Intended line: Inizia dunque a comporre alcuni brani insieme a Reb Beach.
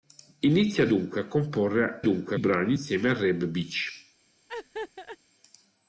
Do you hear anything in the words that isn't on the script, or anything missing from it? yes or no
yes